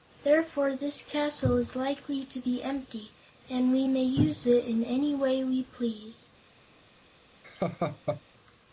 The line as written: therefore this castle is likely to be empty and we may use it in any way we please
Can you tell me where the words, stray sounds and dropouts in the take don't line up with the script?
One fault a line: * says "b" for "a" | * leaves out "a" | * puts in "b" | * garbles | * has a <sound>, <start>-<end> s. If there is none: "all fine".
* has a laugh, 7.4-8.2 s